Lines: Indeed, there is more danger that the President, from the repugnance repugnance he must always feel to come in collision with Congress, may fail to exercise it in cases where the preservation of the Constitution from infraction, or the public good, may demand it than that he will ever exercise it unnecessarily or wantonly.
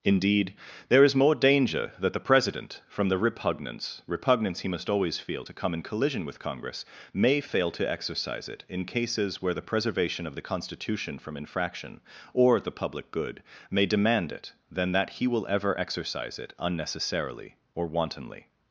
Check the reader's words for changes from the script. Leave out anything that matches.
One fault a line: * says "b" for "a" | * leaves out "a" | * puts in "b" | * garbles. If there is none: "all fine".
all fine